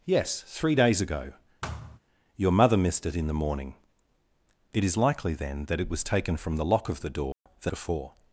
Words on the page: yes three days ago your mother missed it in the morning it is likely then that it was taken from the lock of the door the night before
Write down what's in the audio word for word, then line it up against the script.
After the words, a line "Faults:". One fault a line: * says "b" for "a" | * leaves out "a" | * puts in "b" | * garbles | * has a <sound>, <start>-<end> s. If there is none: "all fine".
yes three days ago your mother missed it in the morning it is likely then that it was taken from the lock of the door the before
Faults:
* has a thud, 1.6-2.0 s
* has a dropout, 7.3-7.5 s
* leaves out "night"